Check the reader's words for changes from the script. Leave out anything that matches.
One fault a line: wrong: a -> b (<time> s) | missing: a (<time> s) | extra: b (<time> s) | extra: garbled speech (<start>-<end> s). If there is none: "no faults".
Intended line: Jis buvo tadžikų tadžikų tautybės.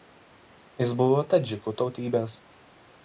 missing: tadžikų (1.8 s)